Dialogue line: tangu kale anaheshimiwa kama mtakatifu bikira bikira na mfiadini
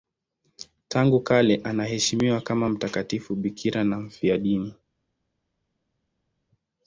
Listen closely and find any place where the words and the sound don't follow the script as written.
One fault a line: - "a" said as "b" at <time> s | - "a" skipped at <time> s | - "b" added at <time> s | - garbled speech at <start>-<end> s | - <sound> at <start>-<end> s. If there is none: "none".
- "bikira" skipped at 3.8 s